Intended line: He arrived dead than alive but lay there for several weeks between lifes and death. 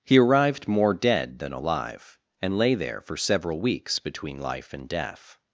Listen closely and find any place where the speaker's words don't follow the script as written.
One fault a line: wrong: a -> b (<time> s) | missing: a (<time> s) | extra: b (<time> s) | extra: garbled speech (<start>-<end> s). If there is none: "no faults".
extra: more (0.7 s)
wrong: but -> and (2.4 s)
wrong: lifes -> life (4.4 s)